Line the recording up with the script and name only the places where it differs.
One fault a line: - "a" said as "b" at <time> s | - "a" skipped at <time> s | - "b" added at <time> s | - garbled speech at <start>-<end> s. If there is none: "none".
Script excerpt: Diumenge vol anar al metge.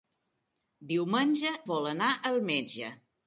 none